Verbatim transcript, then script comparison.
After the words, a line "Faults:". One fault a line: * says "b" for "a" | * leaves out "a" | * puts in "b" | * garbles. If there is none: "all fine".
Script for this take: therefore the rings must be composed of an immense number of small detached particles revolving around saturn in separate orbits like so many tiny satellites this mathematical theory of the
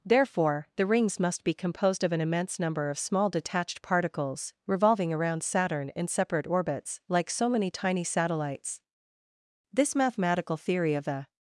therefore the rings must be composed of an immense number of small detached particles revolving around saturn in separate orbits like so many tiny satellites this mathematical theory of the
Faults:
all fine